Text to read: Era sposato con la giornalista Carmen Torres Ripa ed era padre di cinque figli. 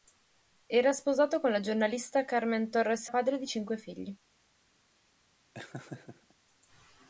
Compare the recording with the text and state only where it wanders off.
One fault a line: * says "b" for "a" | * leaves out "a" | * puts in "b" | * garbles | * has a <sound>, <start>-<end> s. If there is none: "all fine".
* leaves out "Ripa ed era"
* has a laugh, 5.5-6.3 s